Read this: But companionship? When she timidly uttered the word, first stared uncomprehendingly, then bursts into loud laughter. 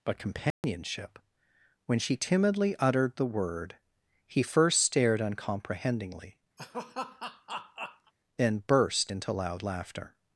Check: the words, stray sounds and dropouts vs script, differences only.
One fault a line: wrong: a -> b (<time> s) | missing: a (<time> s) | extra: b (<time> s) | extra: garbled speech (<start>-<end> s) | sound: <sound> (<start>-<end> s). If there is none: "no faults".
sound: dropout (0.5-0.6 s)
extra: he (4.3 s)
sound: laugh (6.6-8.1 s)
wrong: bursts -> burst (8.7 s)